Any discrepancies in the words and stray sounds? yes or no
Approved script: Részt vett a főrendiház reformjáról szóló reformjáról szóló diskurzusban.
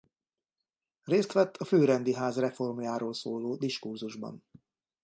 yes